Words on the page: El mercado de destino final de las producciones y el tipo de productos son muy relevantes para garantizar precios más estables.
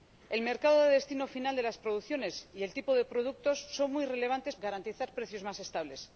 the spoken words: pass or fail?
fail